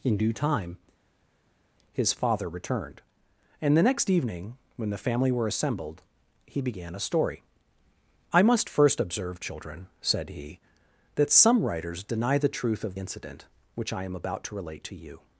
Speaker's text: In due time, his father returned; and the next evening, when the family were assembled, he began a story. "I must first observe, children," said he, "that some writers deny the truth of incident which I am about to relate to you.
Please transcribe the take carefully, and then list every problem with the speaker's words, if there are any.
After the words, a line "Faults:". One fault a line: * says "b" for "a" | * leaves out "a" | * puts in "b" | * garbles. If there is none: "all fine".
In due time, his father returned; and the next evening, when the family were assembled, he began a story. "I must first observe, children," said he, "that some writers deny the truth of incident which I am about to relate to you.
Faults:
all fine